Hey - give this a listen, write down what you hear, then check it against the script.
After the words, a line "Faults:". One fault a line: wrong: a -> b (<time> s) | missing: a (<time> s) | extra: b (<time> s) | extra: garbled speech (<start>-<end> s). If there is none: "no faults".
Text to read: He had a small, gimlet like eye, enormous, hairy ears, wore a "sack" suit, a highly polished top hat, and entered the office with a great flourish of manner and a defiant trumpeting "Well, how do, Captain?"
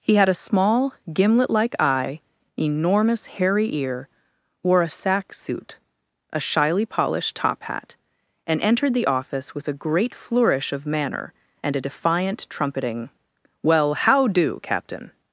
He had a small, gimlet like eye, enormous, hairy ear, wore a "sack" suit, a shyly polished top hat, and entered the office with a great flourish of manner and a defiant trumpeting "Well, how do, Captain?"
Faults:
wrong: ears -> ear (3.8 s)
wrong: highly -> shyly (6.4 s)